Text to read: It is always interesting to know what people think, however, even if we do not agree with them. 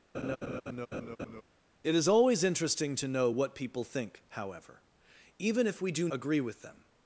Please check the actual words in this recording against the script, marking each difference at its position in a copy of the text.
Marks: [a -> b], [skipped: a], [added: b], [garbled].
It is always interesting to know what people think, however, even if we do [skipped: not] agree with them.